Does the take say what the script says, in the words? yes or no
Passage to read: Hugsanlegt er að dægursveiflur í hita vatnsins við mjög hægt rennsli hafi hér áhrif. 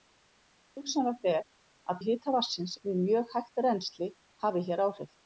no